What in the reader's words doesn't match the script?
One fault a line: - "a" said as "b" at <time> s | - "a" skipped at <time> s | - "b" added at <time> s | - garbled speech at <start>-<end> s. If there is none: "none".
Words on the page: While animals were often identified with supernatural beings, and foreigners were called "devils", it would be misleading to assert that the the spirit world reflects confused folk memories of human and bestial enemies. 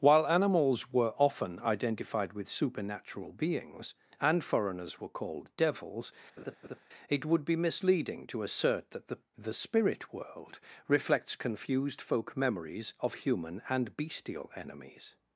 none